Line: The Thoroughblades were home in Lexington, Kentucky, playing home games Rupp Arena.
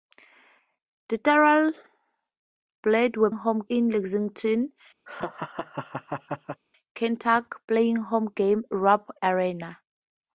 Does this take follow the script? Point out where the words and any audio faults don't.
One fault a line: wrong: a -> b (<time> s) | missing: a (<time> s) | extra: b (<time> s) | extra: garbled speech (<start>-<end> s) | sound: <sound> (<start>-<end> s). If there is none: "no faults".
sound: laugh (5.1-6.6 s)